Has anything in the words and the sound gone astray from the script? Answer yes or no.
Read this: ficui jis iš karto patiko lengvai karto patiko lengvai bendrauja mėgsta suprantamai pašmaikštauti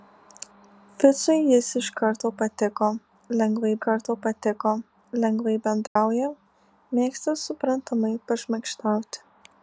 yes